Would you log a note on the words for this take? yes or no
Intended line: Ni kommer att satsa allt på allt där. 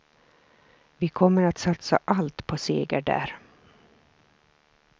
yes